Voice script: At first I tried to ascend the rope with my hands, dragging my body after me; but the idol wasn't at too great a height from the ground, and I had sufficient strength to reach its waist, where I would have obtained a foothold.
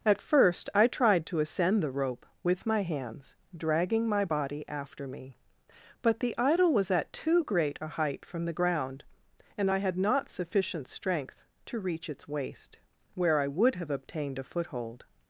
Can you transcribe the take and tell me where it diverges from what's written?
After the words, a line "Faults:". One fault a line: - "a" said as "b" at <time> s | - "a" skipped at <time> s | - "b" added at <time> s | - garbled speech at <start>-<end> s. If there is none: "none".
At first I tried to ascend the rope with my hands, dragging my body after me; but the idol was at too great a height from the ground, and I had not sufficient strength to reach its waist, where I would have obtained a foothold.
Faults:
- "wasn't" said as "was" at 6.7 s
- "not" added at 10.0 s